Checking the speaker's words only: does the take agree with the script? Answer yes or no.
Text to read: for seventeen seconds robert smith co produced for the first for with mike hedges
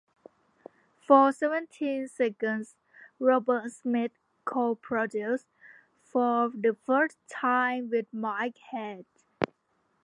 no